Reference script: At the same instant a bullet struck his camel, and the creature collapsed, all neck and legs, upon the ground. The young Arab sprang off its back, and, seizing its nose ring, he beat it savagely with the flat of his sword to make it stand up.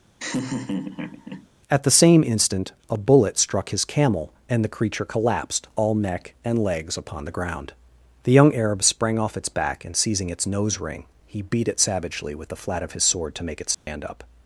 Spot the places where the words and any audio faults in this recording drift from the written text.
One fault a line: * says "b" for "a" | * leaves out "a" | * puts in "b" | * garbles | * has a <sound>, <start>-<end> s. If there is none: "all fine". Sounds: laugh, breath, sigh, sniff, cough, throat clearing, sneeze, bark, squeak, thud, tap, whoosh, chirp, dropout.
* has a laugh, 0.2-1.5 s
* has a dropout, 13.7-13.9 s